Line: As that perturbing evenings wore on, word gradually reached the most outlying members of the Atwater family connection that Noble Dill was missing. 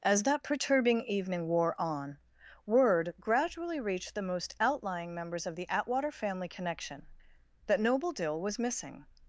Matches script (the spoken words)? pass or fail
fail